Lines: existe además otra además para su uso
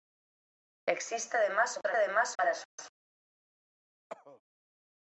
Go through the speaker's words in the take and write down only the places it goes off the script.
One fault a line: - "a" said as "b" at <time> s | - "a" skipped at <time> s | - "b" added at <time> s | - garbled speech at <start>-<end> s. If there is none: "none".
none